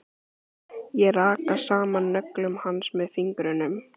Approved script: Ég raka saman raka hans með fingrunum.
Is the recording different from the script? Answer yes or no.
yes